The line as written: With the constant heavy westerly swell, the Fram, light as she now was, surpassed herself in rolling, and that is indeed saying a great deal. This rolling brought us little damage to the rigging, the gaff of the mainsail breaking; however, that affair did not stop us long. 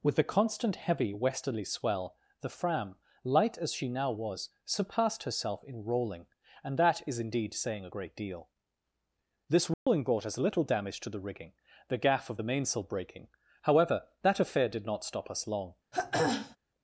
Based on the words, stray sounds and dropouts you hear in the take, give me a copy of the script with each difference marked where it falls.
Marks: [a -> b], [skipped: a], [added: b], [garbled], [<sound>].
With the constant heavy westerly swell, the Fram, light as she now was, surpassed herself in rolling, and that is indeed saying a great deal. This rolling [dropout] brought us little damage to the rigging, the gaff of the mainsail breaking; however, that affair did not stop us long. [throat clearing]